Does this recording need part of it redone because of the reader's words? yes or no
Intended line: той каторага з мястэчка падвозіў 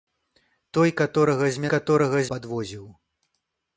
yes